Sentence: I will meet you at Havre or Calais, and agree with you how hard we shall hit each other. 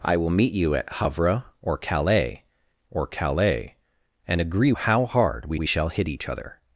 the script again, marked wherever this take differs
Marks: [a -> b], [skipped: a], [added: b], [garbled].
I will meet you at Havre or Calais, [added: or Calais] and agree [skipped: with you] how hard we [added: we] shall hit each other.